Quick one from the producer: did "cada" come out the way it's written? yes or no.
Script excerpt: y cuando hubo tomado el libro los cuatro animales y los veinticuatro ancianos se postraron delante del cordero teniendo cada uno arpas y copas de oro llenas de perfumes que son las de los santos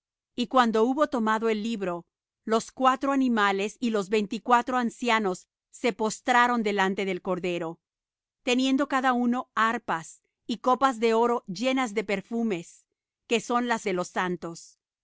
yes